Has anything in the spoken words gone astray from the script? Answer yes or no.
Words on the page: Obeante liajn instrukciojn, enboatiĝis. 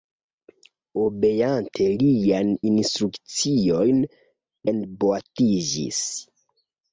no